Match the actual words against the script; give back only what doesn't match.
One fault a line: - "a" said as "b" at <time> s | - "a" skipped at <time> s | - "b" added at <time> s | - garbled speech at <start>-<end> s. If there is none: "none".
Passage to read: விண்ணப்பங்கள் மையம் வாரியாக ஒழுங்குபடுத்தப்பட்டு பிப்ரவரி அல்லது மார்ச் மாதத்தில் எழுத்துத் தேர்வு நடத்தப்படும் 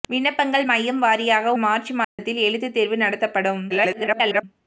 - "ஒழுங்குபடுத்தப்பட்டு பிப்ரவரி அல்லது" skipped at 1.5 s
- garbled speech at 3.7-4.4 s